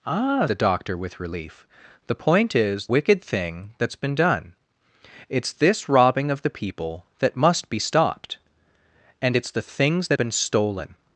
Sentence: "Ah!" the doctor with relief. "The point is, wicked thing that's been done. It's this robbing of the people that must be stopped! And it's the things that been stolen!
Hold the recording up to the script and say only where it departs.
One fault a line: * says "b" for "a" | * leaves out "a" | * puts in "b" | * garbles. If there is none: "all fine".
all fine